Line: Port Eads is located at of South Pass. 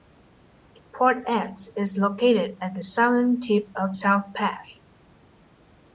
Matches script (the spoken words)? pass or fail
fail